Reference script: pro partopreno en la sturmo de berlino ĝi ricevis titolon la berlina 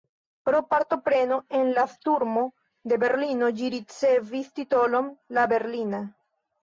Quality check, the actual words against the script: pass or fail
pass